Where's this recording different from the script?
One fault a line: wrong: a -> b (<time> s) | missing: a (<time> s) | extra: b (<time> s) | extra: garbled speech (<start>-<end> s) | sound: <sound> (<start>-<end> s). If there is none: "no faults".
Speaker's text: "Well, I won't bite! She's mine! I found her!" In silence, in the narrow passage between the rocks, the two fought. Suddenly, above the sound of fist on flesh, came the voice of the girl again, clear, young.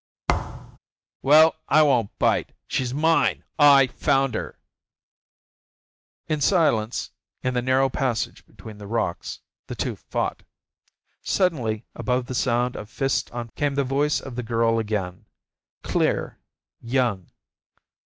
sound: thud (0.3-0.8 s)
missing: flesh (13.5 s)